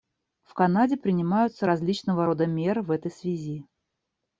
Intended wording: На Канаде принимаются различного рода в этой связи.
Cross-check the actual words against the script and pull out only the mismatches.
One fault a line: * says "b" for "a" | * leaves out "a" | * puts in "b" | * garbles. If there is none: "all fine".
* says "В" for "На"
* puts in "меры"